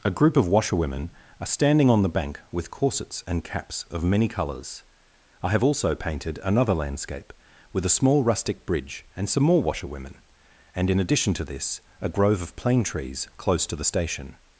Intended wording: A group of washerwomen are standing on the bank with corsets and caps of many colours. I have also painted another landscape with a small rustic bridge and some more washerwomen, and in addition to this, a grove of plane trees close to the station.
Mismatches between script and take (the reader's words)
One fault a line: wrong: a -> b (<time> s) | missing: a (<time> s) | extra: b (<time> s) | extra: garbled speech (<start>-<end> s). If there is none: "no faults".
no faults